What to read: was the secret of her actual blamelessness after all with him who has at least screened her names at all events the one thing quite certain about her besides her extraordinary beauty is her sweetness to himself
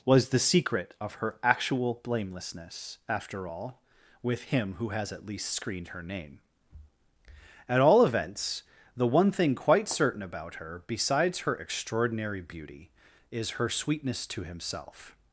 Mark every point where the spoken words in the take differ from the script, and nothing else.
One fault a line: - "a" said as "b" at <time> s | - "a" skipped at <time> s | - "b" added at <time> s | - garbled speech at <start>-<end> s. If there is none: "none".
- "names" said as "name" at 6.0 s